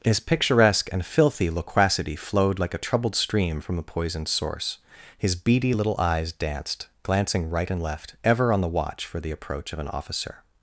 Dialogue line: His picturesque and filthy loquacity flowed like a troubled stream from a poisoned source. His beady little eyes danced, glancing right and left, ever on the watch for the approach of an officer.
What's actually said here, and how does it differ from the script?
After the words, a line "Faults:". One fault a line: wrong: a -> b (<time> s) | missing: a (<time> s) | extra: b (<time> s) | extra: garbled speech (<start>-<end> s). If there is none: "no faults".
His picturesque and filthy loquacity flowed like a troubled stream from a poisoned source. His beady little eyes danced, glancing right and left, ever on the watch for the approach of an officer.
Faults:
no faults